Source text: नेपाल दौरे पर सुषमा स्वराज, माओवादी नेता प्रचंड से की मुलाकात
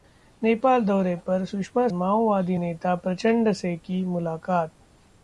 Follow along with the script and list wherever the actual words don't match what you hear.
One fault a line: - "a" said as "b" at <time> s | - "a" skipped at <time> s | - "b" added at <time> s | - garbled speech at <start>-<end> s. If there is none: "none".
- "स्वराज" skipped at 1.9 s